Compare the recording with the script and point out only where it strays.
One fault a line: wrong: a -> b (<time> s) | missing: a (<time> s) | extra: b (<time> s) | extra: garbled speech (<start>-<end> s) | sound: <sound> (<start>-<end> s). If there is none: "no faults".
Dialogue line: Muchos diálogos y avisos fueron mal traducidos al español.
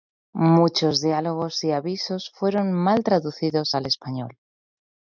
no faults